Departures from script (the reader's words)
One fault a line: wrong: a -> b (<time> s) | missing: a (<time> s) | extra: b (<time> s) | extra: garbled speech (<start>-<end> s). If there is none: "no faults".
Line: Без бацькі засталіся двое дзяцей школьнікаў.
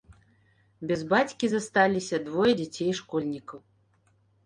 no faults